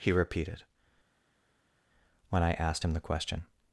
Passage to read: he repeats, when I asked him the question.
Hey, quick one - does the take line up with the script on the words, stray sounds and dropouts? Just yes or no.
no